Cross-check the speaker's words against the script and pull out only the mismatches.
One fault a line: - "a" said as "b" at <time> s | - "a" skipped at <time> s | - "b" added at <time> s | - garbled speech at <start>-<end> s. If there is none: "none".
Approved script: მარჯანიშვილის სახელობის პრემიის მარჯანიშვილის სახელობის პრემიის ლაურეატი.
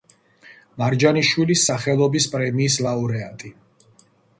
- "მარჯანიშვილის სახელობის პრემიის" skipped at 2.8 s